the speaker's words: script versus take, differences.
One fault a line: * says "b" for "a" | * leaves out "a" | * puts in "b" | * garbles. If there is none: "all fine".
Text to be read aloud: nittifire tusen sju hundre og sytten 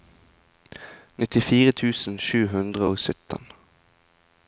all fine